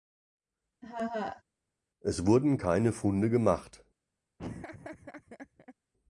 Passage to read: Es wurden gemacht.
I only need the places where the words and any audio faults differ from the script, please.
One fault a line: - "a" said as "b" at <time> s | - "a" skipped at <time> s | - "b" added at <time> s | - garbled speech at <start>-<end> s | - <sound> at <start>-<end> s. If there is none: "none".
- laugh at 0.8-1.4 s
- "keine Funde" added at 2.6 s
- laugh at 4.4-5.7 s